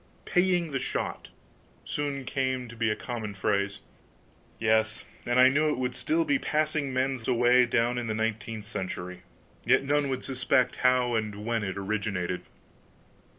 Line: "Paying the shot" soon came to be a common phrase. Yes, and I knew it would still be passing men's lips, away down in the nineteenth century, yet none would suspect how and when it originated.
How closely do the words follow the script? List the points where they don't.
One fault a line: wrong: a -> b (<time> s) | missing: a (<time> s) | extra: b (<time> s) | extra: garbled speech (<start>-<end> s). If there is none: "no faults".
missing: lips (7.3 s)